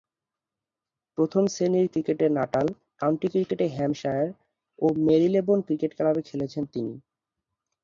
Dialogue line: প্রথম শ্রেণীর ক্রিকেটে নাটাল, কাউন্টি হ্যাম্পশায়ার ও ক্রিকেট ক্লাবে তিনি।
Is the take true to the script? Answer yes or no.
no